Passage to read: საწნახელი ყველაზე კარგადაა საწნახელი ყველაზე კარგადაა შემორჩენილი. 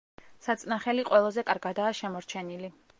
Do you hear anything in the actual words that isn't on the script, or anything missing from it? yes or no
yes